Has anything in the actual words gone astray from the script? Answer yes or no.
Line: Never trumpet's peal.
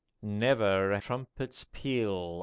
no